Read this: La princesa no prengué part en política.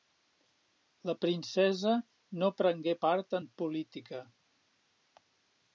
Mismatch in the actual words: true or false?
false